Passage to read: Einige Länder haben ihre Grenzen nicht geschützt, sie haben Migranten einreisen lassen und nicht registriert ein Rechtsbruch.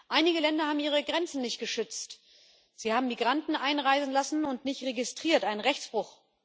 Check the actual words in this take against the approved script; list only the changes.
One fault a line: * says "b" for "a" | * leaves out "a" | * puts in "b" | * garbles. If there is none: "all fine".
all fine